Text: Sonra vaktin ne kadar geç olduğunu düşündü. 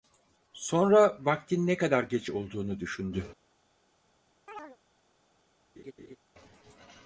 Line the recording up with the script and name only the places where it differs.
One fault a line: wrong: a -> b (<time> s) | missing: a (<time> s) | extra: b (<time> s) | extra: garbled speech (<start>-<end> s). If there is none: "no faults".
no faults